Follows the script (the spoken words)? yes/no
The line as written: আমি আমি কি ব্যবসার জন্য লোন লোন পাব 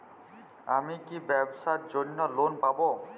no